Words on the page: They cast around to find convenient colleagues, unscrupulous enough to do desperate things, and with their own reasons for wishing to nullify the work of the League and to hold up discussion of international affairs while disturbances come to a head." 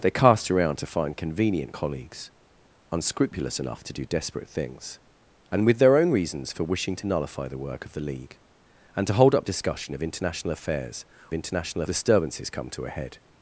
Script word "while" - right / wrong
wrong